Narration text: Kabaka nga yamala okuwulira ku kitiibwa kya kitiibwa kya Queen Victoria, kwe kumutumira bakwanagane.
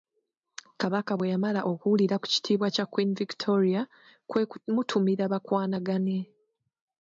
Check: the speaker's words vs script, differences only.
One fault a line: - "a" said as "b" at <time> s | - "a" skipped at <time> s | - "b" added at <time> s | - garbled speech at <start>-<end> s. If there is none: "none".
- "nga" said as "bwe" at 1.1 s
- "kitiibwa kya" skipped at 2.8 s